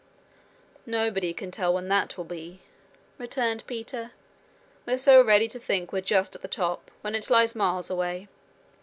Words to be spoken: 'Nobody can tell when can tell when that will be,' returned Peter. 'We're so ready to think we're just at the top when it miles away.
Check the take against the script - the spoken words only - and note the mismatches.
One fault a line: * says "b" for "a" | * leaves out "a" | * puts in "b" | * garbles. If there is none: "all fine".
* leaves out "can tell when"
* puts in "lies"